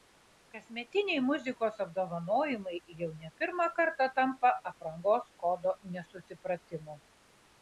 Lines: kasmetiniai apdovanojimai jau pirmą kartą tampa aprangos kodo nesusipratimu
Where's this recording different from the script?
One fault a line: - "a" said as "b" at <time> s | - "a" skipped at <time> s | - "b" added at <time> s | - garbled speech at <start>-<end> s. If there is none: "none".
- "muzikos" added at 1.2 s
- "ne" added at 3.2 s